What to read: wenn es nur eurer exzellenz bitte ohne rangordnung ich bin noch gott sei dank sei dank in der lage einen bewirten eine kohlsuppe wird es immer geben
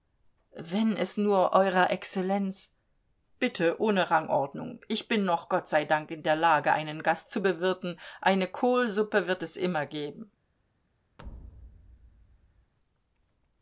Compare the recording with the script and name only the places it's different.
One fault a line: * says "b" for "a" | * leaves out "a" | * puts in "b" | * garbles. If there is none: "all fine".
* leaves out "sei dank"
* puts in "gast zu"